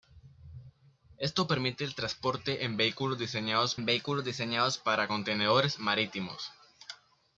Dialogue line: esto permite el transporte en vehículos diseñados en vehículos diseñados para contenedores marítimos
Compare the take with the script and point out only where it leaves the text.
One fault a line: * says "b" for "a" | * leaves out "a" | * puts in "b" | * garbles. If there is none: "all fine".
all fine